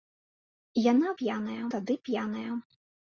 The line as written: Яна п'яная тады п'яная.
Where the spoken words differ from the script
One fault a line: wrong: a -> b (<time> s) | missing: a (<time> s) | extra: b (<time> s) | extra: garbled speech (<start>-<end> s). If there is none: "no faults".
no faults